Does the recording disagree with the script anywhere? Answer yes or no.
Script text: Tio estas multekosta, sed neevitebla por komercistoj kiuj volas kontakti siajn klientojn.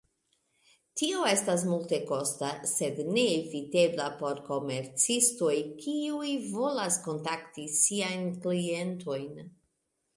no